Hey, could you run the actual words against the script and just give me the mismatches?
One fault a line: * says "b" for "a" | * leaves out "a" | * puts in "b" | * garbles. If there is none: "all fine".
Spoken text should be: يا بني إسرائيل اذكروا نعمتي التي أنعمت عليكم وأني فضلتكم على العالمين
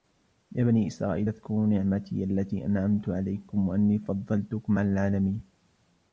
all fine